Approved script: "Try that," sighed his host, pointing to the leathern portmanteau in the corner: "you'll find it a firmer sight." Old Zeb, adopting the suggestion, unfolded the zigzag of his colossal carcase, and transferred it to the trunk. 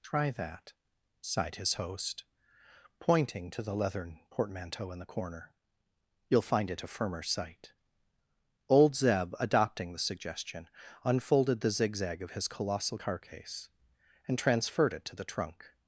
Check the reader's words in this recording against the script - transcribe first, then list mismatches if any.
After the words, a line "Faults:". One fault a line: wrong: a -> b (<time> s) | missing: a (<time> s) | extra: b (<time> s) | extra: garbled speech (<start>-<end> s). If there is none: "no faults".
"Try that," sighed his host, pointing to the leathern portmanteau in the corner: "you'll find it a firmer sight." Old Zeb, adopting the suggestion, unfolded the zigzag of his colossal carcase, and transferred it to the trunk.
Faults:
no faults